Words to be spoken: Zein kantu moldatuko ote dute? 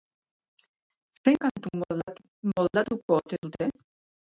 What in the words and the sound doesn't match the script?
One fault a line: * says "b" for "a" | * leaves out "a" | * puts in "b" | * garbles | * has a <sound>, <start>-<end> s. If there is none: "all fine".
all fine